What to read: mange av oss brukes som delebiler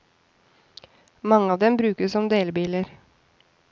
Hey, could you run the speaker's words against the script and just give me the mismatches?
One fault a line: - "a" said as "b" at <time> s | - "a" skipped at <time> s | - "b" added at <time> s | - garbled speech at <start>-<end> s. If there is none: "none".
- "oss" said as "dem" at 1.6 s